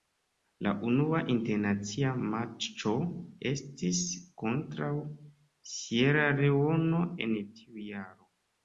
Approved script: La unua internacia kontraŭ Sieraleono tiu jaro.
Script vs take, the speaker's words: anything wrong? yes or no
yes